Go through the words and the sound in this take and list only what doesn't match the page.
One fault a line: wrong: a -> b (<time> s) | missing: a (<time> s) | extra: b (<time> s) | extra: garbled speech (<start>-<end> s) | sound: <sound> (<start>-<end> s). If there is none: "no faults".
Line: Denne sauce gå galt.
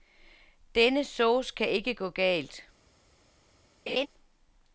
extra: kan ikke (1.6 s)
sound: laugh (3.9-4.1 s)